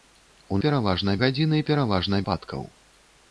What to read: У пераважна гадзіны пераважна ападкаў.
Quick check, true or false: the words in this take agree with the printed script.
true